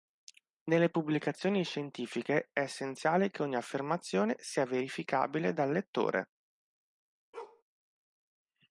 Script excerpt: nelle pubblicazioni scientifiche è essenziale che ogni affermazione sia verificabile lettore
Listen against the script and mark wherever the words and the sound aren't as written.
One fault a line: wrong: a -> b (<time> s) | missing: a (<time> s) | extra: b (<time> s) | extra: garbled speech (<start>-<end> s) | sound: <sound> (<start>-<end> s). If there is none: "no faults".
extra: dal (5.5 s)
sound: bark (7.3-7.6 s)